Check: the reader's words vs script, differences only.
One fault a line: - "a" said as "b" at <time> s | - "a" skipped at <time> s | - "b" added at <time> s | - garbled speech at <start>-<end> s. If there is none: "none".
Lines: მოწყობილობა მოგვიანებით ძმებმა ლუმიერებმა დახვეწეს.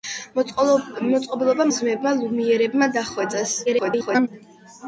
- "მოგვიანებით" skipped at 1.7 s
- garbled speech at 3.7-4.3 s